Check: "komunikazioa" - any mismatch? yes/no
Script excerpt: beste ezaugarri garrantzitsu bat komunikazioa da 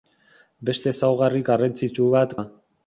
yes